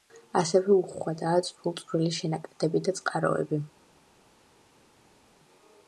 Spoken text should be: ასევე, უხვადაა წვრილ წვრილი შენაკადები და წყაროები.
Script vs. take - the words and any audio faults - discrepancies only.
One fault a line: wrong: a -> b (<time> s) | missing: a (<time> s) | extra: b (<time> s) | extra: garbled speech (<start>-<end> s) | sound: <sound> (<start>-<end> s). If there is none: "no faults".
no faults